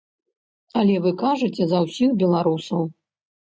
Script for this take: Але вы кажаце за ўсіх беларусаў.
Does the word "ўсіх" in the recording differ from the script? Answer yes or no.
no